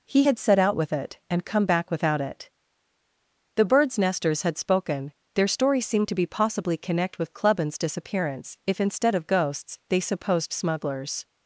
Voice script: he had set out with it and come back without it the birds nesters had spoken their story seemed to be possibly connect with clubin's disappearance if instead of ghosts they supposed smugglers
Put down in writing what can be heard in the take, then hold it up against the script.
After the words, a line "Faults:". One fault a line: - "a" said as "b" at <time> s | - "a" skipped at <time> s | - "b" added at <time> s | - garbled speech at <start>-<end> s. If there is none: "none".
he had set out with it and come back without it the birds nesters had spoken their story seemed to be possibly connect with clubin's disappearance if instead of ghosts they supposed smugglers
Faults:
none